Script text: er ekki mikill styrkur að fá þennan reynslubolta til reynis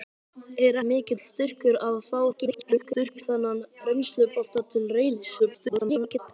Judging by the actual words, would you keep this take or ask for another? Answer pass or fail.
fail